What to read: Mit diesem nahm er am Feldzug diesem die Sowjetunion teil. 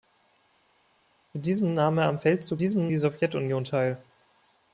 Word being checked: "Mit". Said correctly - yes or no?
yes